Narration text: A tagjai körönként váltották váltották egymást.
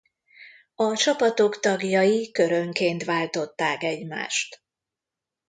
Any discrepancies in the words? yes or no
yes